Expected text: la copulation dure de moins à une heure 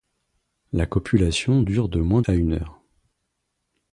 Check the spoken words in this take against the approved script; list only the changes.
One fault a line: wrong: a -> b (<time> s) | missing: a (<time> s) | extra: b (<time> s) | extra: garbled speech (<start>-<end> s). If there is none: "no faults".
no faults